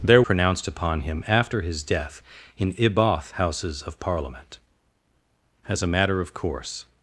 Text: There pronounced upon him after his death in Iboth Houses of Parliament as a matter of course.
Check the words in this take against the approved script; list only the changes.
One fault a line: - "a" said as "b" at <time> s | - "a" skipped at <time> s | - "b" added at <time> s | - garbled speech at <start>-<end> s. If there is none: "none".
none